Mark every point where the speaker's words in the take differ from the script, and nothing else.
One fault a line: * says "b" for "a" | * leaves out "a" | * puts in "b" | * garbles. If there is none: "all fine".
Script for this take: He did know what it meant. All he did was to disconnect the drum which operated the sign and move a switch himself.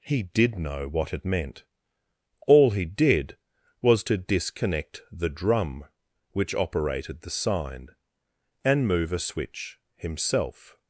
all fine